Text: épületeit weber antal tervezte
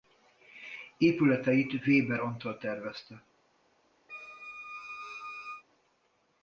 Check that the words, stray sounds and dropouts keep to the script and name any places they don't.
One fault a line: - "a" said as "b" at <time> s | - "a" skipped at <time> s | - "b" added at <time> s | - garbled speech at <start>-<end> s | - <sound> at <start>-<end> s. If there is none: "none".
- squeak at 4.1-5.6 s